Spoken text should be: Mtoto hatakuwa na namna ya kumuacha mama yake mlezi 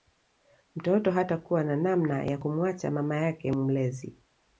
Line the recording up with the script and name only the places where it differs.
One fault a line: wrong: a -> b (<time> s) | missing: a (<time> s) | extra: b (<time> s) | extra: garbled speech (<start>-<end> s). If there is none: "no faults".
no faults